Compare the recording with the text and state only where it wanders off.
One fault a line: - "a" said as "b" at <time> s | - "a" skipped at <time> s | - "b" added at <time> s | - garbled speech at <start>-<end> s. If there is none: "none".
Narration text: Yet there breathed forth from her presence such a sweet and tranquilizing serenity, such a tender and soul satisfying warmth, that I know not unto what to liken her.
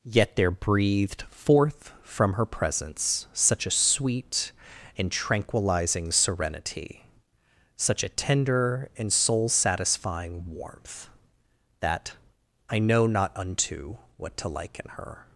none